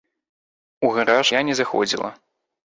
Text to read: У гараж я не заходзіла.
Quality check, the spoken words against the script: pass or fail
pass